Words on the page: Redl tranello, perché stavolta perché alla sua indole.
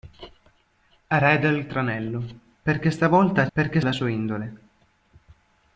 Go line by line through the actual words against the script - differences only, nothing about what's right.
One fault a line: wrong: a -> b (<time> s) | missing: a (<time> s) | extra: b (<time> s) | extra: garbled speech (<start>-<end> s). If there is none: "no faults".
no faults